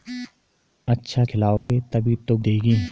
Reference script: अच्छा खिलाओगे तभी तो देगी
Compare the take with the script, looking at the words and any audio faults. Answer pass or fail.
fail